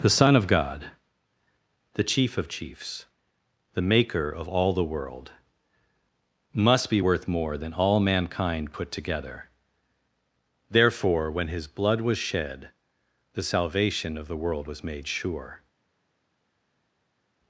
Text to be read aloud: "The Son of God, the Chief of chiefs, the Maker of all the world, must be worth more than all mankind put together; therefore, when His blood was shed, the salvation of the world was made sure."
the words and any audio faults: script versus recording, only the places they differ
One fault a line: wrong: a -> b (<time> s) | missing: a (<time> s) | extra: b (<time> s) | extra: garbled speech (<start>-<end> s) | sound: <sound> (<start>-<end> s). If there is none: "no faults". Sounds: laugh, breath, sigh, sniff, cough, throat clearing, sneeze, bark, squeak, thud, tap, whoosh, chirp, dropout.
no faults